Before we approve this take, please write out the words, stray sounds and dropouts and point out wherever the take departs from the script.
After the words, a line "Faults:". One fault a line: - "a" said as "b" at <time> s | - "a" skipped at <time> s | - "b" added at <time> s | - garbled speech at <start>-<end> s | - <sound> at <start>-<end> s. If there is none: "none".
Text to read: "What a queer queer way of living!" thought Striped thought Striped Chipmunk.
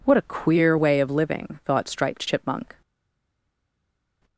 "What a queer way of living!" thought Striped Chipmunk.
Faults:
- "queer" skipped at 0.8 s
- "thought Striped" skipped at 2.3 s